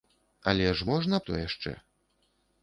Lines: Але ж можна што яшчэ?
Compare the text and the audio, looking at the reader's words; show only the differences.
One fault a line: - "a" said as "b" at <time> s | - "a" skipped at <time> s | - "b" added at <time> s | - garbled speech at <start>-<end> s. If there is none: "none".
none